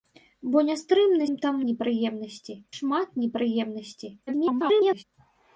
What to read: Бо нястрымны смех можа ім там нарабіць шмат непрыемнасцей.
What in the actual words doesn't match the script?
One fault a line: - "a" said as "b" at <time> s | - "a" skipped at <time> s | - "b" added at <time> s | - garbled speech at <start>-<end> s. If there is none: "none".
- "смех можа" skipped at 1.3 s
- "нарабіць" said as "непрыемнасцей" at 1.7 s
- garbled speech at 4.3-5.0 s